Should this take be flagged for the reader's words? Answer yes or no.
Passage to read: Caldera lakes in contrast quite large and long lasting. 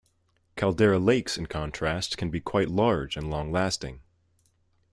yes